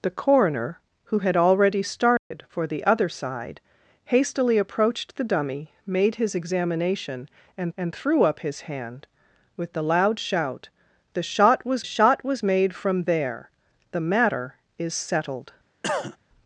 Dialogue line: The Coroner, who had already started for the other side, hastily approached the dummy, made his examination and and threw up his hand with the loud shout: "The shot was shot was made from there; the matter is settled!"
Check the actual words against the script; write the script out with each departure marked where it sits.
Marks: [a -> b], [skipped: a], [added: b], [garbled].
The Coroner, who had already started for the other side, hastily approached the dummy, made his examination and and threw up his hand with the loud shout: "The shot was shot was made from there; the matter is settled!"